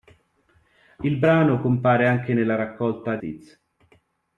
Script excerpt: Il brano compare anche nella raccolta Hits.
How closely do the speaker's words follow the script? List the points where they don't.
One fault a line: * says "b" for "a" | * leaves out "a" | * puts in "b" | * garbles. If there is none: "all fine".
all fine